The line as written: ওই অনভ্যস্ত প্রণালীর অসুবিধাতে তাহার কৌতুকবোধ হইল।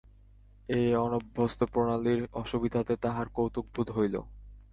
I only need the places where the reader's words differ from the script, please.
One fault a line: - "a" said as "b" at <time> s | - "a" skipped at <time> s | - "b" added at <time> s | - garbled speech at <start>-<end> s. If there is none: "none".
- "ওই" said as "এই" at 0.7 s